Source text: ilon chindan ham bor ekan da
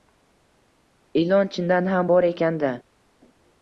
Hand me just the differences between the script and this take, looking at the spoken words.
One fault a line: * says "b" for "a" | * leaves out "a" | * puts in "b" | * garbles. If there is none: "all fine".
all fine